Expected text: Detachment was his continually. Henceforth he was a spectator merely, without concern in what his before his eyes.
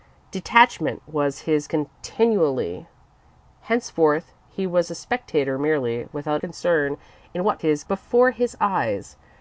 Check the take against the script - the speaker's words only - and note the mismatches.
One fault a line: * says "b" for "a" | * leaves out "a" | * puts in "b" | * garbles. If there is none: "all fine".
all fine